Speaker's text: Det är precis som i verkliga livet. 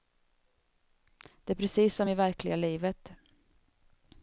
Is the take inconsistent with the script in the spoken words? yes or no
no